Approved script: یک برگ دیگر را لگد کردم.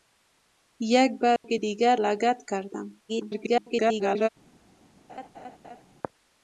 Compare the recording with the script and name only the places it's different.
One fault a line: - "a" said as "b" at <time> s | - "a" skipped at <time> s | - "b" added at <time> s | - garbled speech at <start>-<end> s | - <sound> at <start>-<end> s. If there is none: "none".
- dropout at 1.4-1.4 s
- "را" skipped at 2.0 s
- garbled speech at 3.1-4.3 s
- laugh at 5.1-5.8 s